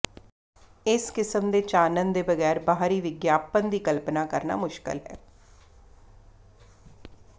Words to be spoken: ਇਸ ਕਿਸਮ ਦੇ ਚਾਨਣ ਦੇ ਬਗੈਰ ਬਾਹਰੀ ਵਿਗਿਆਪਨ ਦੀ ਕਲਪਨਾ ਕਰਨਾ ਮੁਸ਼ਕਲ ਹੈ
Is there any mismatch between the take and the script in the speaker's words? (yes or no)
no